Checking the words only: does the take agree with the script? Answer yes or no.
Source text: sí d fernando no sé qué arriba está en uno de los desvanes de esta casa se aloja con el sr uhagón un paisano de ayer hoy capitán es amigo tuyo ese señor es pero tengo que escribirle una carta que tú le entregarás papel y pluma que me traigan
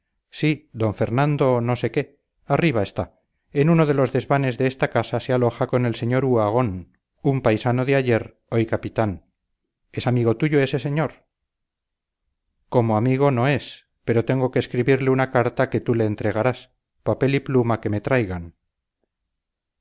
no